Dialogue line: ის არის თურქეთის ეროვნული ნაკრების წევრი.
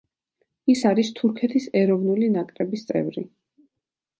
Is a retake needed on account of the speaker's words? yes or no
no